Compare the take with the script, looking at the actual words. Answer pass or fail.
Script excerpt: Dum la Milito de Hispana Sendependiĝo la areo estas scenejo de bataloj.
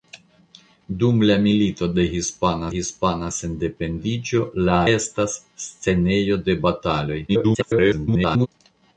fail